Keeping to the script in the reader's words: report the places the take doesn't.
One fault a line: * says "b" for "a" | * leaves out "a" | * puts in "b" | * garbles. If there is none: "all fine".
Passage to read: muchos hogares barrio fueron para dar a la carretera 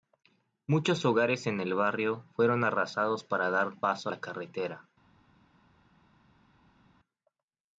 * puts in "en el"
* puts in "arrasados"
* puts in "paso"